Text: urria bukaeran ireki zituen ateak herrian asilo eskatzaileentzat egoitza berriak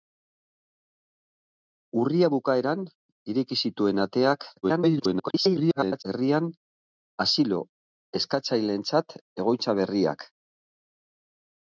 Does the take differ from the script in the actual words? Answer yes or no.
yes